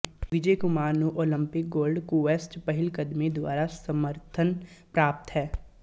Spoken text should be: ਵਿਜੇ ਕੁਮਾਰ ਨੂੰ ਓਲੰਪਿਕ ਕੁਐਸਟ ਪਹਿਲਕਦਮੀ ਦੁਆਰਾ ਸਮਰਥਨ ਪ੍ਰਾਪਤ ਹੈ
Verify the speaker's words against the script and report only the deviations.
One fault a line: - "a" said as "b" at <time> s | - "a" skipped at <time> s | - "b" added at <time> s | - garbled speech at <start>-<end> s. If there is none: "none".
- "ਗੋਲਡ" added at 1.7 s